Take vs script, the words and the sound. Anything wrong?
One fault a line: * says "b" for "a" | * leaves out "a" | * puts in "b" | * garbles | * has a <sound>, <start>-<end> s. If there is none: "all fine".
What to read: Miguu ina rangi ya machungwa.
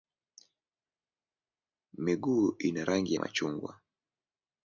* leaves out "ya"